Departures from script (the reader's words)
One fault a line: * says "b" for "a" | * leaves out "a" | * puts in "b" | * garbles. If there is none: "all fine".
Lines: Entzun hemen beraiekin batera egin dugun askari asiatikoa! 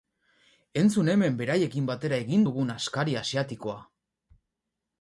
all fine